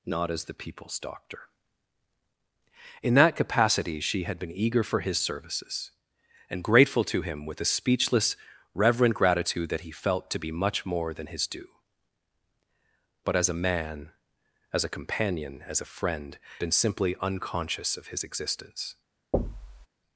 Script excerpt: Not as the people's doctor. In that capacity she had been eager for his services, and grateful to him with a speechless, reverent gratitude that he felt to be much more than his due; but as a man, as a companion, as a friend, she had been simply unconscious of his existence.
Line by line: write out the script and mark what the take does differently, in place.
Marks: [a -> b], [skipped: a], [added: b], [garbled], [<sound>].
Not as the people's doctor. In that capacity she had been eager for his services, and grateful to him with a speechless, reverent gratitude that he felt to be much more than his due; but as a man, as a companion, as a friend, [skipped: she had] been simply unconscious of his existence. [thud]